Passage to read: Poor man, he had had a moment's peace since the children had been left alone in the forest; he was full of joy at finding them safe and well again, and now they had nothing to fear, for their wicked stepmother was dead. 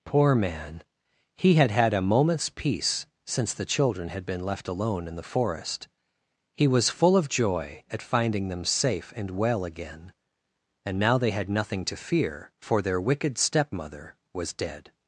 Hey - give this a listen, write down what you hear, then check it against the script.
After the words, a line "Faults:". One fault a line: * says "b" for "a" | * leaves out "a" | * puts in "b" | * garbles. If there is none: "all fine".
Poor man, he had had a moment's peace since the children had been left alone in the forest; he was full of joy at finding them safe and well again, and now they had nothing to fear, for their wicked stepmother was dead.
Faults:
all fine